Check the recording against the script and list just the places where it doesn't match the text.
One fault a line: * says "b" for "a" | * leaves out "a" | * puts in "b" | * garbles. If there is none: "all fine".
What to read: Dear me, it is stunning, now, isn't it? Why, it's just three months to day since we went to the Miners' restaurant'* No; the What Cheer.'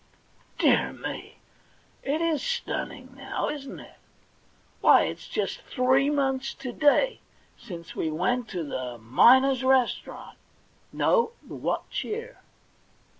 all fine